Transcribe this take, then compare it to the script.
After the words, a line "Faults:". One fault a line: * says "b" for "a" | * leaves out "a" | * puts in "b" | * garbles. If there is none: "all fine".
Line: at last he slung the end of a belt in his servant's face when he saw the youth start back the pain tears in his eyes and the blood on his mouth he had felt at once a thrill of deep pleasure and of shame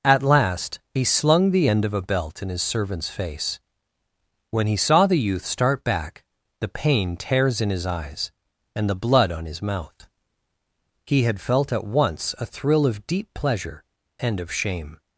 at last he slung the end of a belt in his servant's face when he saw the youth start back the pain tears in his eyes and the blood on his mouth he had felt at once a thrill of deep pleasure and of shame
Faults:
all fine